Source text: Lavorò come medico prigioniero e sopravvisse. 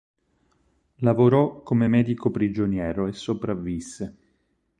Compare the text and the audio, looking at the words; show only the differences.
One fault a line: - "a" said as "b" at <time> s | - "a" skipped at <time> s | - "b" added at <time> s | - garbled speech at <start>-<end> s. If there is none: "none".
none